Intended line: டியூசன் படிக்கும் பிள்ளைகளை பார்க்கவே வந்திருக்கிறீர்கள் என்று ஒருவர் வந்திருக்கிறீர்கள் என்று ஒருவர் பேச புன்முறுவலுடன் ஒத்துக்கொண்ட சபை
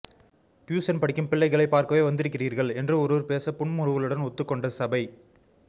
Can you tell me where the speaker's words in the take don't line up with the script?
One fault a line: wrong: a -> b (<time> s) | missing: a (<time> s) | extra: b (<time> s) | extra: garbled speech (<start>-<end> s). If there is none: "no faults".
missing: வந்திருக்கிறீர்கள் என்று ஒருவர் (3.3 s)